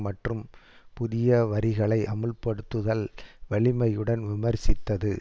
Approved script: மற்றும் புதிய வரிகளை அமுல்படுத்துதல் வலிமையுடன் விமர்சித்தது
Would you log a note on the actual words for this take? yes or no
no